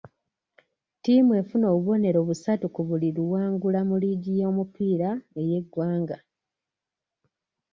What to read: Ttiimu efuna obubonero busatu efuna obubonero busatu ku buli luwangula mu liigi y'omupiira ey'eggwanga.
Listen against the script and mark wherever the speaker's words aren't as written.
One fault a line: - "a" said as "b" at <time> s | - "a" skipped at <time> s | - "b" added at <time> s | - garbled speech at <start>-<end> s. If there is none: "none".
- "efuna obubonero busatu" skipped at 2.6 s